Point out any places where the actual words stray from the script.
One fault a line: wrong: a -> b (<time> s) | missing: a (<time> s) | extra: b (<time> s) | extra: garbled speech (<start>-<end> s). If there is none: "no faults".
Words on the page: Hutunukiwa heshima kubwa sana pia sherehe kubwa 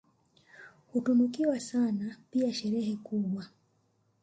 missing: heshima kubwa (1.6 s)